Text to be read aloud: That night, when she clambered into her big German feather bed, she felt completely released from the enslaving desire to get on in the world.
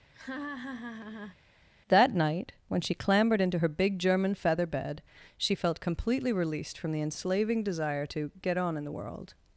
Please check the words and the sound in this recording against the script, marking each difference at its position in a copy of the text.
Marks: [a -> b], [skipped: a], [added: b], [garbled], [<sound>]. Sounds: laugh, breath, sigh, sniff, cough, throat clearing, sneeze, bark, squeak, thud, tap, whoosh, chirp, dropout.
[laugh] That night, when she clambered into her big German feather bed, she felt completely released from the enslaving desire to get on in the world.